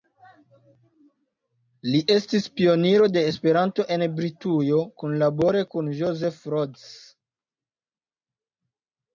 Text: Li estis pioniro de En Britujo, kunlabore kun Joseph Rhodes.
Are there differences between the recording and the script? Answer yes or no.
yes